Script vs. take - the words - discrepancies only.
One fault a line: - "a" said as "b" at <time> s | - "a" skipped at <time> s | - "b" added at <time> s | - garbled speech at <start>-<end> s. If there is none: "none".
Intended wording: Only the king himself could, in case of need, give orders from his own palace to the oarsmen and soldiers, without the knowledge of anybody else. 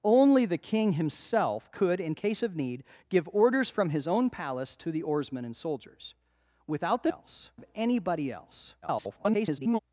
- "knowledge" said as "else" at 7.1 s
- garbled speech at 8.8-9.8 s